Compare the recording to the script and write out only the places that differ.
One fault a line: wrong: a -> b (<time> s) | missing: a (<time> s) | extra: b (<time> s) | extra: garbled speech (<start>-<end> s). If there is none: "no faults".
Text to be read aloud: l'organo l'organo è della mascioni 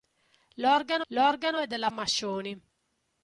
no faults